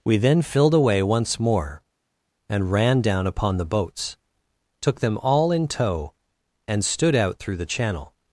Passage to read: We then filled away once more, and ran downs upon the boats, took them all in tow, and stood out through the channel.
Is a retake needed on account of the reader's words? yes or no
yes